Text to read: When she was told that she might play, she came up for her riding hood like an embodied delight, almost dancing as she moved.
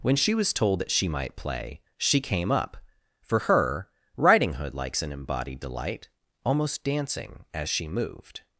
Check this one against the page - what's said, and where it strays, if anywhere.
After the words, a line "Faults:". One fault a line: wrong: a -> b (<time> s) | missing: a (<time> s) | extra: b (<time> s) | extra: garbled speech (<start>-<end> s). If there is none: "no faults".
When she was told that she might play, she came up for her riding hood likes an embodied delight, almost dancing as she moved.
Faults:
wrong: like -> likes (4.7 s)